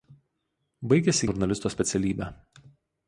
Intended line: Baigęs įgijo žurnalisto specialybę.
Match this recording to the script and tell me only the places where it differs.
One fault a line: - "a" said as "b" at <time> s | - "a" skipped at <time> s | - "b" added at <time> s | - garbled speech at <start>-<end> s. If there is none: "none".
- "įgijo" skipped at 1.2 s